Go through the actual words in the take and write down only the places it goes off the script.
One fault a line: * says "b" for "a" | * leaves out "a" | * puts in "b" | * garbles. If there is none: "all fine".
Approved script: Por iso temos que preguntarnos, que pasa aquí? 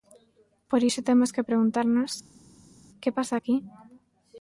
all fine